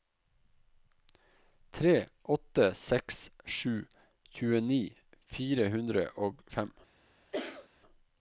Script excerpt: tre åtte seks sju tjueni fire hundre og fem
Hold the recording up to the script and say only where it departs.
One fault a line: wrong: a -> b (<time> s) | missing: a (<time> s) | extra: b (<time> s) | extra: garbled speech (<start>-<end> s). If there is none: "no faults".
no faults